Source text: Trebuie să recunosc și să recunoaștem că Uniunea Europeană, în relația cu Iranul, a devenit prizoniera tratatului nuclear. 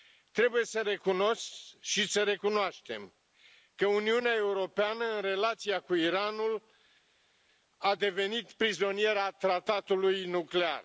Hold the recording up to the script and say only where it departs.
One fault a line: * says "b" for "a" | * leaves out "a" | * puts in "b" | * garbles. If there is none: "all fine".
all fine